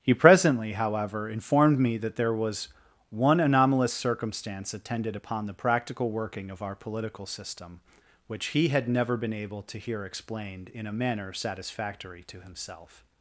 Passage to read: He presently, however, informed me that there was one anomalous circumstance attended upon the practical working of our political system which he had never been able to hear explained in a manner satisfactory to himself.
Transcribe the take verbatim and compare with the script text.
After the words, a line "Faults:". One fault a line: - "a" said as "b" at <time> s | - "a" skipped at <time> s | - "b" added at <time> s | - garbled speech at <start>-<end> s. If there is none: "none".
He presently, however, informed me that there was one anomalous circumstance attended upon the practical working of our political system which he had never been able to hear explained in a manner satisfactory to himself.
Faults:
none